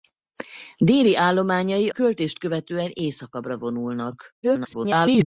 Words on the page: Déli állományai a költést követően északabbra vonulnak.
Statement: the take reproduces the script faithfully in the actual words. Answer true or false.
false